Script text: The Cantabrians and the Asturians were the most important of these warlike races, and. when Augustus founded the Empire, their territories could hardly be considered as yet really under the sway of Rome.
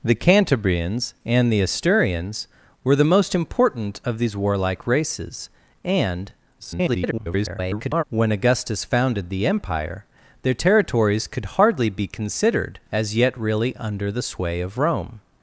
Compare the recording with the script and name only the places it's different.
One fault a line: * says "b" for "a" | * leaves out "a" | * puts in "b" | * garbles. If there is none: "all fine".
* garbles